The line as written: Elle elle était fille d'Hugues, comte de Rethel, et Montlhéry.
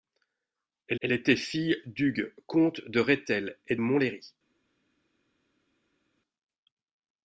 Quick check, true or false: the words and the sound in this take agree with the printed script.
true